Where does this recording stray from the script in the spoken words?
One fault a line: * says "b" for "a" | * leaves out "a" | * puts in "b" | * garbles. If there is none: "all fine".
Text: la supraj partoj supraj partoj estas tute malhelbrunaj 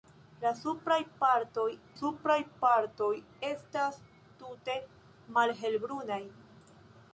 all fine